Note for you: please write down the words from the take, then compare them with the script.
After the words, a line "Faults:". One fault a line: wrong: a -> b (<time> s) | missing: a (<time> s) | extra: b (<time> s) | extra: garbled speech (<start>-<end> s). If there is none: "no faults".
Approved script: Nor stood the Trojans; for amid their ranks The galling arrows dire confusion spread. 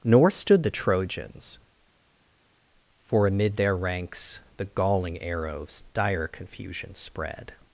Nor stood the Trojans; for amid their ranks The galling arrows dire confusion spread.
Faults:
no faults